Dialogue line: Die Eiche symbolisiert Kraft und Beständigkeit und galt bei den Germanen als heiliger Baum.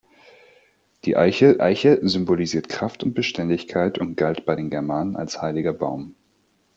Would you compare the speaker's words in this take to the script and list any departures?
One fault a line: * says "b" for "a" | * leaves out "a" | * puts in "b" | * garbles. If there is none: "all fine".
* puts in "Eiche"